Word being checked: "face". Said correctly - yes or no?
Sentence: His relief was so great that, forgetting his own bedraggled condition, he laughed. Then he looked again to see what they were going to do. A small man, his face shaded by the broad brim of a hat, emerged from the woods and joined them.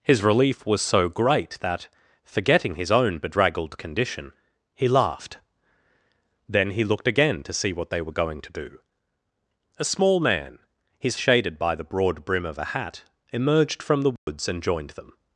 no